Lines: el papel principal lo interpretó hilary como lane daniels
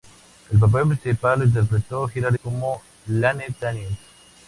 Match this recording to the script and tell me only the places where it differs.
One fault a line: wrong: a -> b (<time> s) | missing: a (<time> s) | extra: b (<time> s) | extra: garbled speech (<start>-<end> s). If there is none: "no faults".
no faults